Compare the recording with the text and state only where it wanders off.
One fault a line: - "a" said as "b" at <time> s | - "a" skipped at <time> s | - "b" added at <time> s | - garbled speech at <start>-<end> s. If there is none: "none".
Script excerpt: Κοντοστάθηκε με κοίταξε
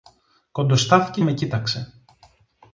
none